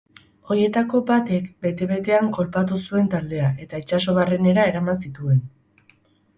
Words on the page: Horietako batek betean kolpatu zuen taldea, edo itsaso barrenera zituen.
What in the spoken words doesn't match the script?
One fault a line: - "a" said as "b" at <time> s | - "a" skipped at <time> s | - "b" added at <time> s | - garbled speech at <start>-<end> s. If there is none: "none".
- "bete" added at 1.6 s
- "edo" said as "eta" at 3.7 s
- "eraman" added at 4.8 s